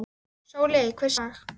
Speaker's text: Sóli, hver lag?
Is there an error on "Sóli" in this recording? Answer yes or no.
no